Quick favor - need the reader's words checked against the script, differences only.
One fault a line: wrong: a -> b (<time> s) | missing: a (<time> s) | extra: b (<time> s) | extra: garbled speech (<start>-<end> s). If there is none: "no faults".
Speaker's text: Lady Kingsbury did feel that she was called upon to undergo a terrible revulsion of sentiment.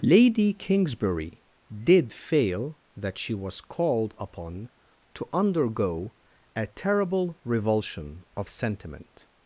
wrong: feel -> fail (2.1 s)